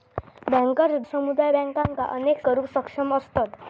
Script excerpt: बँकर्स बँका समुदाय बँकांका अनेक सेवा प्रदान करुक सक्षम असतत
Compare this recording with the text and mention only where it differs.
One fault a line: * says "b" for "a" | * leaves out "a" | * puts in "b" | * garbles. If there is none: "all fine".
* leaves out "बँका"
* leaves out "सेवा प्रदान"